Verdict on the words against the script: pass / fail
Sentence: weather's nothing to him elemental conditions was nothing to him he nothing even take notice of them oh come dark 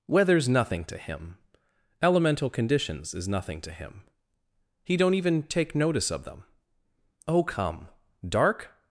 fail